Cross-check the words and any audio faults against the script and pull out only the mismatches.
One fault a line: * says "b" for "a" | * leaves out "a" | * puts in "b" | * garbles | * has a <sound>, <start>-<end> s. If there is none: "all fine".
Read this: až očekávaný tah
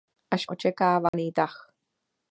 * has a dropout, 1.1-1.1 s